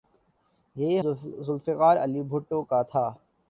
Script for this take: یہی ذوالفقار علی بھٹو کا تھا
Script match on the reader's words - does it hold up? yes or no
yes